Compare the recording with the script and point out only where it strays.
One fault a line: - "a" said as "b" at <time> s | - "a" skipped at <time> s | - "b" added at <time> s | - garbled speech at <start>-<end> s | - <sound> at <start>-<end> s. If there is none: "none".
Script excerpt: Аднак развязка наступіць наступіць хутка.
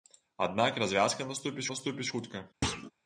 - thud at 2.6-2.9 s